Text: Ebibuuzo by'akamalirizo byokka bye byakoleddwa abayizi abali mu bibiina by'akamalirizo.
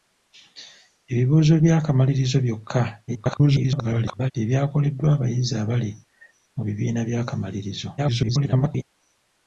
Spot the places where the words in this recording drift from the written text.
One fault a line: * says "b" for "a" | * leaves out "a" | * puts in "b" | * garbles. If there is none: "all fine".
* garbles
* garbles